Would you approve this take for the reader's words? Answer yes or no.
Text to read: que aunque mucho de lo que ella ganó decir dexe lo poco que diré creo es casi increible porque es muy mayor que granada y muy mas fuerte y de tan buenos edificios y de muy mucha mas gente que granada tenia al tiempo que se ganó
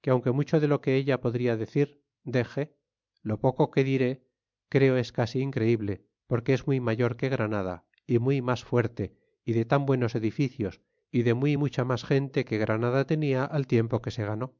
no